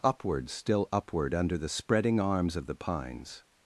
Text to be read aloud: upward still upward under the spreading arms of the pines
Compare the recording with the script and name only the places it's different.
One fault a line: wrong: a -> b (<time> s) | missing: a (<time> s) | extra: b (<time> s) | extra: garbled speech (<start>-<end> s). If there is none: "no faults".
no faults